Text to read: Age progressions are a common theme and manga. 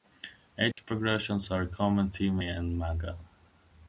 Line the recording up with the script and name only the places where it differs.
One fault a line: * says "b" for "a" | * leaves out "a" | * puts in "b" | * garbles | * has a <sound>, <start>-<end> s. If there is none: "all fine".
* has a dropout, 0.7-0.8 s